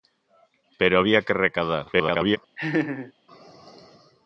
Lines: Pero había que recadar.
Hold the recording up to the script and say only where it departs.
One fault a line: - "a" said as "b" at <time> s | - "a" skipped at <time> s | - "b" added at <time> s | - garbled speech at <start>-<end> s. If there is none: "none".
- garbled speech at 1.9-2.4 s